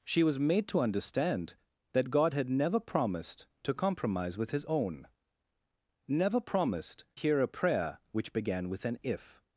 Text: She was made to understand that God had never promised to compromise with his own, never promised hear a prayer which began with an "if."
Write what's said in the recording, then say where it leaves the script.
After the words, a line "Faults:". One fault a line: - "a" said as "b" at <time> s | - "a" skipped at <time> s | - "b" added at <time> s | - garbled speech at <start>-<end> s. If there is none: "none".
She was made to understand that God had never promised to compromise with his own, never promised hear a prayer which began with an "if."
Faults:
none